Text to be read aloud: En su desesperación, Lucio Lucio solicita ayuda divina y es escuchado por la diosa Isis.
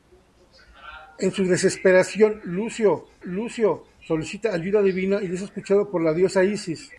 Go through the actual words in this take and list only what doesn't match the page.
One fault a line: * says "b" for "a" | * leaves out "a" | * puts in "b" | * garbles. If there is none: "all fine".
all fine